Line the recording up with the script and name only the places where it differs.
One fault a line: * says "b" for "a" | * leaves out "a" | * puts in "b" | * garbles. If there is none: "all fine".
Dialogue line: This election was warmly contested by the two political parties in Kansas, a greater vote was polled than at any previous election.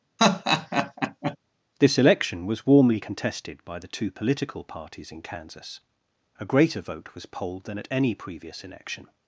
all fine